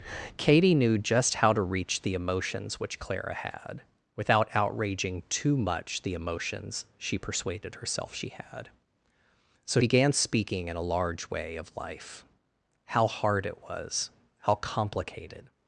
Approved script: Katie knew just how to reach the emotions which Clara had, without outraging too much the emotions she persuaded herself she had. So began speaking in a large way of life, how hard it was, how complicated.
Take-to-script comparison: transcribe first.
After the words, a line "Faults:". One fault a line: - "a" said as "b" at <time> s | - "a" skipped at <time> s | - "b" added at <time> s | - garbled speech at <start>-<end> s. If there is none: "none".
Katie knew just how to reach the emotions which Clara had, without outraging too much the emotions she persuaded herself she had. So began speaking in a large way of life, how hard it was, how complicated.
Faults:
none